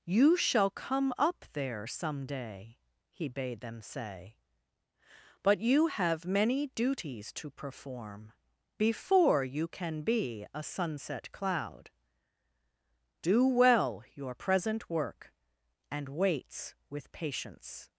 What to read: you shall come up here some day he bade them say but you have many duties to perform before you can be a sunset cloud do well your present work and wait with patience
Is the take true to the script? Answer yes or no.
no